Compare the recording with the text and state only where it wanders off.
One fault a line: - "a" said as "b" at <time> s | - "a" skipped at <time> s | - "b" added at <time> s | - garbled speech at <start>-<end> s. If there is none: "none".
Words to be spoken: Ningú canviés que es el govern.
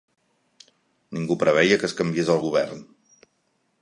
- "canviés" said as "preveia" at 1.4 s
- "canviés" added at 2.0 s